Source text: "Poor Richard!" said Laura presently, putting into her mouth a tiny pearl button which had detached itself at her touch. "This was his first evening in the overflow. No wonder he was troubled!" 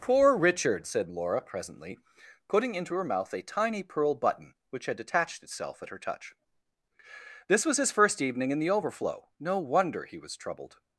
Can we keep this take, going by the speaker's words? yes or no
yes